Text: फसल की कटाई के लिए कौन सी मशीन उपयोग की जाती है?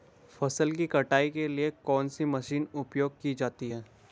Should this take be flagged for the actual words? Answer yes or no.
no